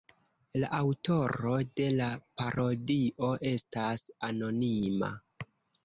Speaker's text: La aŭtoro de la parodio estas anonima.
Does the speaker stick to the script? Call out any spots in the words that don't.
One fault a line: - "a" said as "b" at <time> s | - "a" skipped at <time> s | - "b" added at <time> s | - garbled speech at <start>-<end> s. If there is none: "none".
none